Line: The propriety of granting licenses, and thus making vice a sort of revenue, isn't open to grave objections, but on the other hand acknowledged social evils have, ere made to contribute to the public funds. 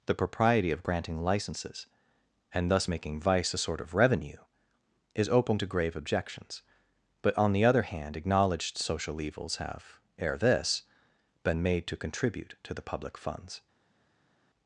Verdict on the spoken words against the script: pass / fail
fail